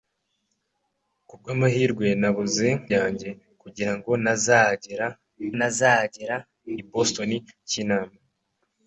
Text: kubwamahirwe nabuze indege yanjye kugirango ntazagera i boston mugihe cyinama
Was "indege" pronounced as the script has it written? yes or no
no